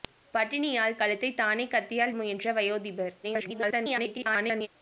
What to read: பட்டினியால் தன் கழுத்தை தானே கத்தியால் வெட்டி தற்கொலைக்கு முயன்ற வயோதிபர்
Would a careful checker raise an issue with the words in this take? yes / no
yes